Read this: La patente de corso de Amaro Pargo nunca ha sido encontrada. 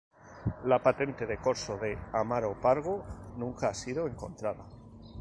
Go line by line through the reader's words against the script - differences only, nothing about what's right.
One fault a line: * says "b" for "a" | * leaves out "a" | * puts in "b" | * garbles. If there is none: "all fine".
all fine